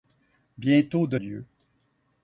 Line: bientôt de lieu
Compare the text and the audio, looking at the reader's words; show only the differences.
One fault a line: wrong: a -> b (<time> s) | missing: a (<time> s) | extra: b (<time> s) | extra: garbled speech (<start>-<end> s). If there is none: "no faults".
no faults